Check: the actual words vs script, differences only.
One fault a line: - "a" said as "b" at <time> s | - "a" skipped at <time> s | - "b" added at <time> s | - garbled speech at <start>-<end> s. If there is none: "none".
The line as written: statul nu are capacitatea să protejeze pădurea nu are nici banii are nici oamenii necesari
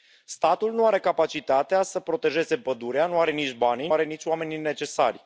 none